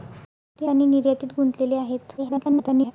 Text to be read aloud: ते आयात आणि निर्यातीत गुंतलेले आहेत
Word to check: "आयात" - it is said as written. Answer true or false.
false